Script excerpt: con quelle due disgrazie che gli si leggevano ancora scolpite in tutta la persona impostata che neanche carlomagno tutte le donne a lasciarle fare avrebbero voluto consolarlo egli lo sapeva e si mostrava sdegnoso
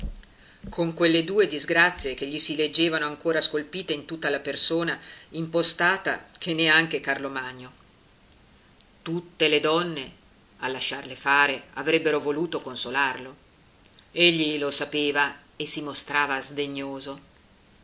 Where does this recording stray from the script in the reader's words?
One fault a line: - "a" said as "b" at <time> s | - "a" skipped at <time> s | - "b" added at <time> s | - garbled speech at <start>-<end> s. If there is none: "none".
none